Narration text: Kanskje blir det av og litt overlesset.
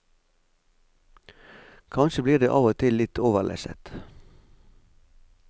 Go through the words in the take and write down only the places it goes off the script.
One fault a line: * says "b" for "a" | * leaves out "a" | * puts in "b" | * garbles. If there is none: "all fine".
* puts in "til"